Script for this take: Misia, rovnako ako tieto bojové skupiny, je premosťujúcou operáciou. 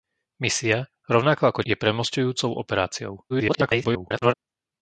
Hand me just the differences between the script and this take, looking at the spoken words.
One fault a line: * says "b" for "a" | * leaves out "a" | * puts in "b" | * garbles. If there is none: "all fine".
* leaves out "tieto bojové skupiny"
* garbles